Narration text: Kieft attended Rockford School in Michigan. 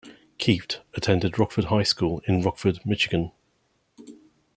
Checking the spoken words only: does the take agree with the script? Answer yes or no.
no